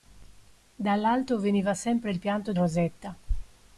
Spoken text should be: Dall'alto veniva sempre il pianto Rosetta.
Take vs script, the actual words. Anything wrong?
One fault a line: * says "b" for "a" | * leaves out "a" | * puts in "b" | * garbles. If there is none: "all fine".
all fine